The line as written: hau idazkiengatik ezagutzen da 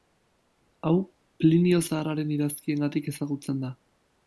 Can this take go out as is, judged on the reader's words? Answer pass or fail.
fail